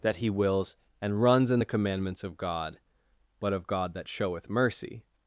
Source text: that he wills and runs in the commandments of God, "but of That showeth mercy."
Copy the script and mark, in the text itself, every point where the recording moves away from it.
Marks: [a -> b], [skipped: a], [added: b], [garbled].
that he wills and runs in the commandments of God, "but of [added: God] That showeth mercy."